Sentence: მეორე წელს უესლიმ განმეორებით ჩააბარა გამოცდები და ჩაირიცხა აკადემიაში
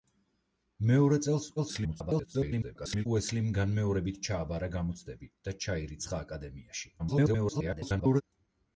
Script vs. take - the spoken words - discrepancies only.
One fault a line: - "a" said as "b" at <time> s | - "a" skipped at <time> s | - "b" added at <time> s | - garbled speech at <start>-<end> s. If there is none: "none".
- garbled speech at 1.6-3.1 s
- garbled speech at 7.0-8.2 s